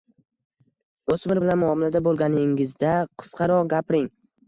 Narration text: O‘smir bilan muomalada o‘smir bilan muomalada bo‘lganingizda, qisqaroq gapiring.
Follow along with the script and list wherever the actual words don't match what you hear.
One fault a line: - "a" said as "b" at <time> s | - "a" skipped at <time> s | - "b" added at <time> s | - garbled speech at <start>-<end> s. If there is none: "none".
- "o‘smir bilan muomalada" skipped at 2.0 s